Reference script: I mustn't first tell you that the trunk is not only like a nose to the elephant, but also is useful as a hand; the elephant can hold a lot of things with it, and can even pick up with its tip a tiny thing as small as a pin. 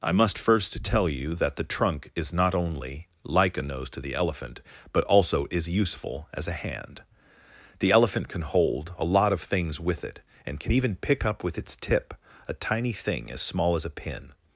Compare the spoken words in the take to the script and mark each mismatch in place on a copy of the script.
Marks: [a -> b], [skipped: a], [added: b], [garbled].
I [mustn't -> must] first tell you that the trunk is not only like a nose to the elephant, but also is useful as a hand; the elephant can hold a lot of things with it, and can even pick up with its tip a tiny thing as small as a pin.